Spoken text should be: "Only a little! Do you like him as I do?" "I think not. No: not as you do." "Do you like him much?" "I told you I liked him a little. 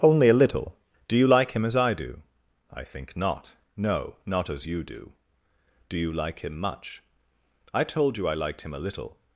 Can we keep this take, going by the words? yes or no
yes